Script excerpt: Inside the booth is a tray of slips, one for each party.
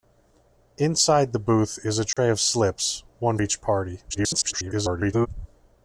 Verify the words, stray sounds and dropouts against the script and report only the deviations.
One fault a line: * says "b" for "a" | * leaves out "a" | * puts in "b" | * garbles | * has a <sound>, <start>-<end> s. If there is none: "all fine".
* has a dropout, 2.1-2.2 s
* leaves out "for"
* garbles